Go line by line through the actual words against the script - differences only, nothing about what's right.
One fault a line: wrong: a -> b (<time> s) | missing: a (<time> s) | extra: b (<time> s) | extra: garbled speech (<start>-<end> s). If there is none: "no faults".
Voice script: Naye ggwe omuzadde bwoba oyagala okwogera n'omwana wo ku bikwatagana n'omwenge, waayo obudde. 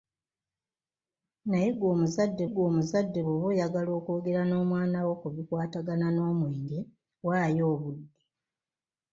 extra: ggwe omuzadde (2.5 s)